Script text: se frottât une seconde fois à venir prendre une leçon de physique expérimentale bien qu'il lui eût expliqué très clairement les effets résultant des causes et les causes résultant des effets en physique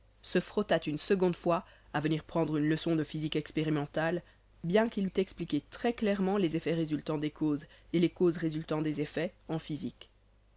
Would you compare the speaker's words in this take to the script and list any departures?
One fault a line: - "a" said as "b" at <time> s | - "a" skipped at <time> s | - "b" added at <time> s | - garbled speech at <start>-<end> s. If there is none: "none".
- "lui" skipped at 5.0 s